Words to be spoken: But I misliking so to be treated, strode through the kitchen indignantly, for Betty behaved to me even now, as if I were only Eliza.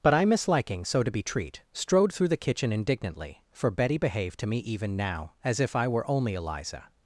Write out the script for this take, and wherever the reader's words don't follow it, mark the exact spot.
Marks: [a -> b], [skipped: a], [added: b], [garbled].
But I misliking so to be [treated, -> treat] strode through the kitchen indignantly, for Betty behaved to me even now, as if I were only Eliza.